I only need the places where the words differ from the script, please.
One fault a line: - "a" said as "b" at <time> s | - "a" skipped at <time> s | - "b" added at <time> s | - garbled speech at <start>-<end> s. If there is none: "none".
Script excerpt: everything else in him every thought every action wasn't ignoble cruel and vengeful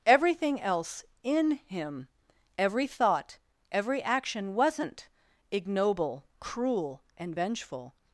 none